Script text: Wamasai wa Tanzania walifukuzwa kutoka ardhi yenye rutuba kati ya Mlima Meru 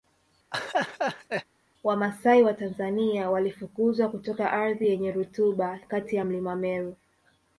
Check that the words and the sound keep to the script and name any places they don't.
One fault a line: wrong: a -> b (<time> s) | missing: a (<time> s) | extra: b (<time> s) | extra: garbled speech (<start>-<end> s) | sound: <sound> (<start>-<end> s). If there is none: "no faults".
sound: laugh (0.5-1.4 s)